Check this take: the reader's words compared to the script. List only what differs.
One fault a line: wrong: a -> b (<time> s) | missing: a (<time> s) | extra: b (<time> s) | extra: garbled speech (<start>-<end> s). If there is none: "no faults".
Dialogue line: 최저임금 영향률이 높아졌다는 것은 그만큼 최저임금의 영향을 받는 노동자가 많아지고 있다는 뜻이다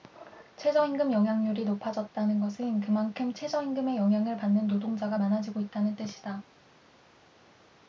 no faults